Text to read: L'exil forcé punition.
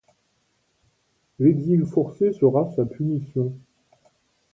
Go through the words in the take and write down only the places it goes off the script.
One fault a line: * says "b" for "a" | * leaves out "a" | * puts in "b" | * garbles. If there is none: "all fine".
* puts in "sera sa"